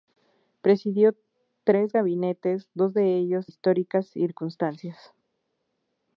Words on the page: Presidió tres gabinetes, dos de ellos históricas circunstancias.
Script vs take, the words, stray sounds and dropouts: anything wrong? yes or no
no